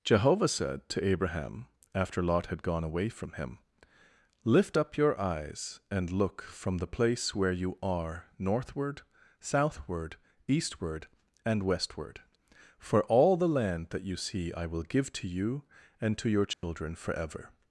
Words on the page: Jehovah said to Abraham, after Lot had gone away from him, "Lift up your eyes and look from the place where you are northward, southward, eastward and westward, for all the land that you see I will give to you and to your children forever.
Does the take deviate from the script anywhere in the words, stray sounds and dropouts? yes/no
yes